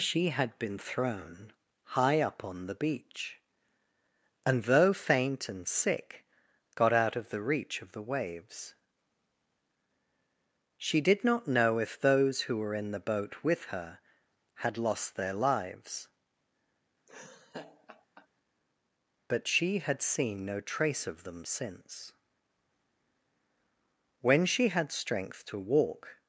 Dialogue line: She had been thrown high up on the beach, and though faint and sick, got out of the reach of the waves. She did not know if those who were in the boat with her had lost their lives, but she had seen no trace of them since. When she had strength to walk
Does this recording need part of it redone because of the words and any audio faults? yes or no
yes